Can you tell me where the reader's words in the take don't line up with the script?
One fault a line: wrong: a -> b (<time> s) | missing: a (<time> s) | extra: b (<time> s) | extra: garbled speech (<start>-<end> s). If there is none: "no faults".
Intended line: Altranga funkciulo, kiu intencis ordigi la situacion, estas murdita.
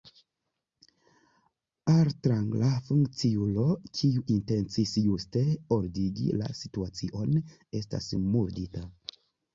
extra: juste (5.0 s)